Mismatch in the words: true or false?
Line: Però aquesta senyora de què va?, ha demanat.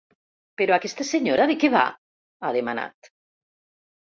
false